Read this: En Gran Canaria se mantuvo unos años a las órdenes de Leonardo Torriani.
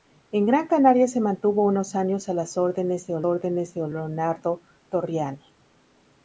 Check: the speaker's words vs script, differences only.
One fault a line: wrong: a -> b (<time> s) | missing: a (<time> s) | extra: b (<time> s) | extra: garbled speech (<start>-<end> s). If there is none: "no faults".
extra: órdenes de (3.2 s)